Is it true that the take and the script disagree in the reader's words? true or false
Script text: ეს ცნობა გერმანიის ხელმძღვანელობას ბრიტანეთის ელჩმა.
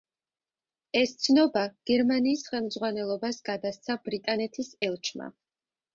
true